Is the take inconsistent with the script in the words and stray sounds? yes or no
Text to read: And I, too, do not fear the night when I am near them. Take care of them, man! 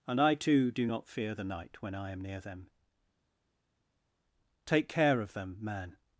no